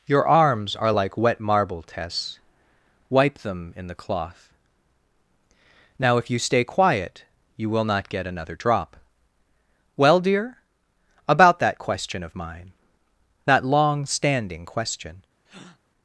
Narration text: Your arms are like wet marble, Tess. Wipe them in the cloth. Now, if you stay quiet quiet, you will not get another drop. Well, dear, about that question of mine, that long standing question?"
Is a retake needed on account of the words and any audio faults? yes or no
yes